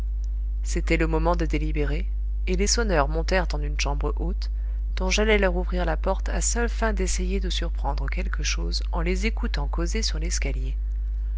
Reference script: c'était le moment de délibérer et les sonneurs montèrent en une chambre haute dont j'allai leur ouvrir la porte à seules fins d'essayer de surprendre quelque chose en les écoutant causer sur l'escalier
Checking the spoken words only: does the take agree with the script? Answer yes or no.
yes